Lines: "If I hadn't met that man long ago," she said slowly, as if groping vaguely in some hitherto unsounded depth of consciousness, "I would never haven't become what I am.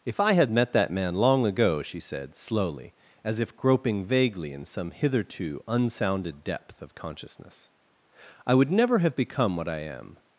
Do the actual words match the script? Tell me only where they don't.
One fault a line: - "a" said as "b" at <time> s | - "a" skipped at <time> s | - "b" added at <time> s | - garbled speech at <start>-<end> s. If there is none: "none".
- "hadn't" said as "had" at 0.3 s
- "haven't" said as "have" at 9.0 s